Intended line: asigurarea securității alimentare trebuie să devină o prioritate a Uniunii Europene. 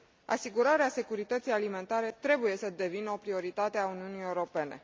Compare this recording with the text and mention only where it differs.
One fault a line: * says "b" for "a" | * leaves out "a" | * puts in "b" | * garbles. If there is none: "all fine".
all fine